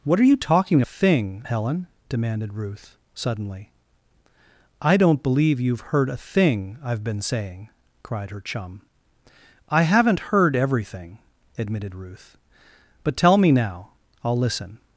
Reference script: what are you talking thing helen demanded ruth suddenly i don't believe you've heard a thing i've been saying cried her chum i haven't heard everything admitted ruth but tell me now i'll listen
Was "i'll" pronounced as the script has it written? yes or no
yes